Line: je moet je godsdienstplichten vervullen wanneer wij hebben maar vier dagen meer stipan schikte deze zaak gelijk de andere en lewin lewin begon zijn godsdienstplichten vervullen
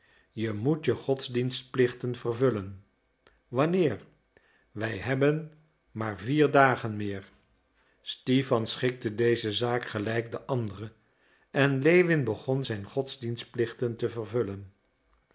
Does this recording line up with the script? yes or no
no